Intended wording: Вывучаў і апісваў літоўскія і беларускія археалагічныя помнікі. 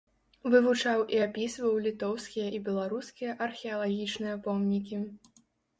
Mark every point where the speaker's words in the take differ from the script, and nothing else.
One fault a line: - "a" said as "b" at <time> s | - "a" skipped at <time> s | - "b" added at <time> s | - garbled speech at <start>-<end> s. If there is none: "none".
none